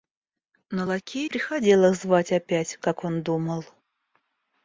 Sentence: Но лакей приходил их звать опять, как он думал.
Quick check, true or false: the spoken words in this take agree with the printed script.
true